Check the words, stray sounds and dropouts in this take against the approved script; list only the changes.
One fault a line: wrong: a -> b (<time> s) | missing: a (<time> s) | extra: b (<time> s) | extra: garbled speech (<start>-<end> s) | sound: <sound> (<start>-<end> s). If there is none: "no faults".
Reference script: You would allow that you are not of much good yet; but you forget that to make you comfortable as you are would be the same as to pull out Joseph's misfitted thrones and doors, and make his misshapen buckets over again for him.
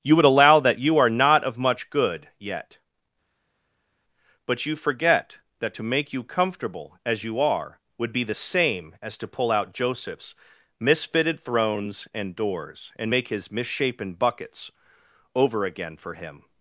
no faults